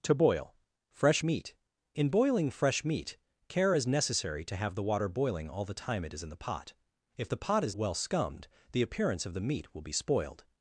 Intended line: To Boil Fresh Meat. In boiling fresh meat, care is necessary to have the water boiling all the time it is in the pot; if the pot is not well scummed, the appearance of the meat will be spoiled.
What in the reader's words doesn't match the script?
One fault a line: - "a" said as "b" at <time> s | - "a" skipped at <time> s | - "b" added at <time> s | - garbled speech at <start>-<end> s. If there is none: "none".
- "not" skipped at 7.7 s